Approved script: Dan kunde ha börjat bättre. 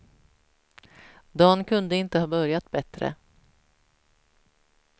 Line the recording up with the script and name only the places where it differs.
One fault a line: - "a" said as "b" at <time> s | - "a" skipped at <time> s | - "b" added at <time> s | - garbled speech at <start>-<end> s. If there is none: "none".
- "inte" added at 1.9 s